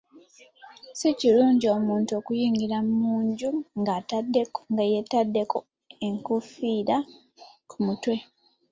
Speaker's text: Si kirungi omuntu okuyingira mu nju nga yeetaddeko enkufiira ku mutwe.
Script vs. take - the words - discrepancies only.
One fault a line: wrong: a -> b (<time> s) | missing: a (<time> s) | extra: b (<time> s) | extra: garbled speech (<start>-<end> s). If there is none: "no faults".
no faults